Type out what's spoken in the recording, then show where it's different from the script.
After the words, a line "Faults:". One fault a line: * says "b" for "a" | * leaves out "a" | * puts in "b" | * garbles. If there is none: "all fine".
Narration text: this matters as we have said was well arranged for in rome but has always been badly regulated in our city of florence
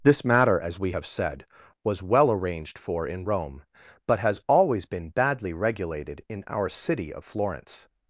this matter as we have said was well arranged for in rome but has always been badly regulated in our city of florence
Faults:
* says "matter" for "matters"